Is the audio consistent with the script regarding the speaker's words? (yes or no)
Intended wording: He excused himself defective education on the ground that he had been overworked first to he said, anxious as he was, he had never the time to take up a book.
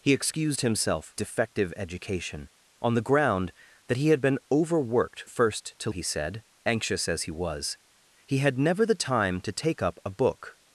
yes